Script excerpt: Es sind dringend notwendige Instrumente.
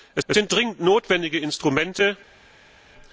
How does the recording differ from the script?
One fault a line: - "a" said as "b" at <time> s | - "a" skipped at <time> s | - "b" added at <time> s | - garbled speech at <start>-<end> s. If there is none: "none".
- "es" added at 0.3 s